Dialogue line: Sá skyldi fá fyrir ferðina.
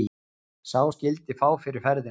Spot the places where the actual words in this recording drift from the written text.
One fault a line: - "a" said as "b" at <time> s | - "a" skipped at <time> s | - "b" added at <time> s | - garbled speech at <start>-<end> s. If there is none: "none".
none